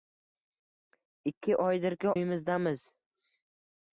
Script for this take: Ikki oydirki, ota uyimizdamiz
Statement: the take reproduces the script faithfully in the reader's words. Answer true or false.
false